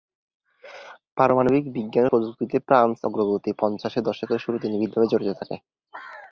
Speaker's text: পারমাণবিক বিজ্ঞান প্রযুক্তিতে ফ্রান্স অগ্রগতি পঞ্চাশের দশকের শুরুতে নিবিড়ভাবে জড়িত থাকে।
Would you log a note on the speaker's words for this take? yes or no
no